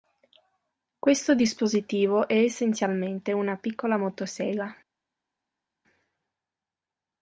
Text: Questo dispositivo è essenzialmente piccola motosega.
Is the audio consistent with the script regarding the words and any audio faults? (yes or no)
no